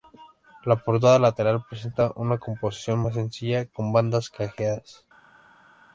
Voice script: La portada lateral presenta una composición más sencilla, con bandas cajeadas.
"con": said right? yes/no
yes